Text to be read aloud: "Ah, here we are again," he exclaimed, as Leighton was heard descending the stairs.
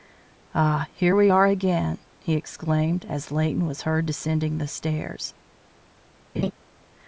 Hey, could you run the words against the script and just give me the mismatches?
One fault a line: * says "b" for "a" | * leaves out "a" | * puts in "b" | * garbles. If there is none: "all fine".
all fine